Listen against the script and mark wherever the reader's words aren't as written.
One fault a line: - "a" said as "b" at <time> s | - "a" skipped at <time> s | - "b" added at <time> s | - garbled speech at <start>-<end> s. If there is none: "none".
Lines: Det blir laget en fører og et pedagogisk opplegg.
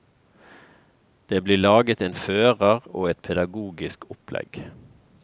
none